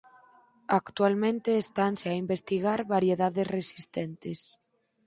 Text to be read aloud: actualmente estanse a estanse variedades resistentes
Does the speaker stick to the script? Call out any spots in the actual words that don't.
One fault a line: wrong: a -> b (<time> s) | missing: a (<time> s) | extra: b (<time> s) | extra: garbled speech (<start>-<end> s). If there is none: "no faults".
wrong: estanse -> investigar (2.2 s)